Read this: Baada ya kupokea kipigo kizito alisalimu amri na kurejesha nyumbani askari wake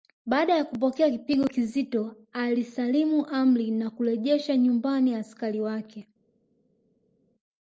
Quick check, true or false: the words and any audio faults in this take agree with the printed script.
true